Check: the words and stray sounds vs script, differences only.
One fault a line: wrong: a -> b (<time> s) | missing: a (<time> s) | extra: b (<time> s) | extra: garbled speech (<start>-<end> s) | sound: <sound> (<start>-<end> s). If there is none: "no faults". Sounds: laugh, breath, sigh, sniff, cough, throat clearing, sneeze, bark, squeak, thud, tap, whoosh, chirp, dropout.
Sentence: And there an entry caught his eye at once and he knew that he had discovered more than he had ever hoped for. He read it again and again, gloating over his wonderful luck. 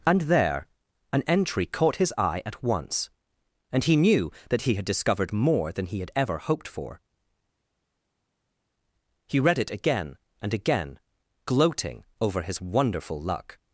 no faults